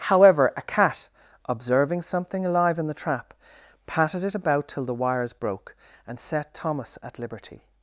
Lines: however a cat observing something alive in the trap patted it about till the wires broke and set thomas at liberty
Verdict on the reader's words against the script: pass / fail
pass